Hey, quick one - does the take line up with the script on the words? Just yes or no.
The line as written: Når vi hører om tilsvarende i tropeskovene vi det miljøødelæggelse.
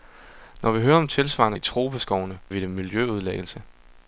yes